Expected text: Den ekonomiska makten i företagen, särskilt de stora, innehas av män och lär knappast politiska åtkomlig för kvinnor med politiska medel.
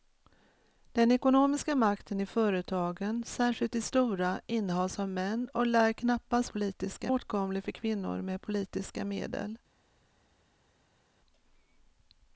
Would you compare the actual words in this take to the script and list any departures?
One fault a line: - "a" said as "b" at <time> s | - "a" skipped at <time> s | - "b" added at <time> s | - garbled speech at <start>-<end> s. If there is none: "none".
none